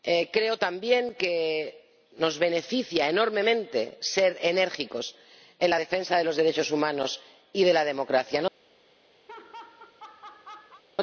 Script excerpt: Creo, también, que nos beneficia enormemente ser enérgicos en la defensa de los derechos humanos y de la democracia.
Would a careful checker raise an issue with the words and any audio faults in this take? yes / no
yes